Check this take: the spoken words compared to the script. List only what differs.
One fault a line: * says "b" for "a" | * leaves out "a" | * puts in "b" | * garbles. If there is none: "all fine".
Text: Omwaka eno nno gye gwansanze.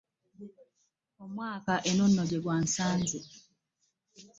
all fine